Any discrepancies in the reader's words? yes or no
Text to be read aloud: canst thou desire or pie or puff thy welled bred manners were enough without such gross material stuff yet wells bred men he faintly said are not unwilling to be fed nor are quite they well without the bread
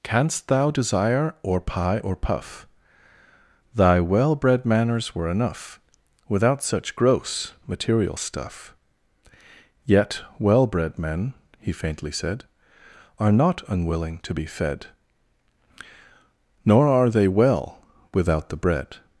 yes